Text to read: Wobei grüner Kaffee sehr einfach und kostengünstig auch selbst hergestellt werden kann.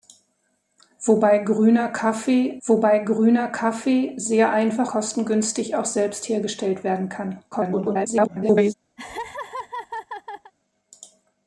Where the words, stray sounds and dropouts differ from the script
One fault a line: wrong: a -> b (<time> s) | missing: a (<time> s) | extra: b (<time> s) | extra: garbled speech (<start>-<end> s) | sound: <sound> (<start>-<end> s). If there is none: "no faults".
extra: wobei grüner Kaffee (2.7 s)
missing: und (4.9 s)
extra: garbled speech (7.5-8.7 s)
sound: laugh (9.0-10.5 s)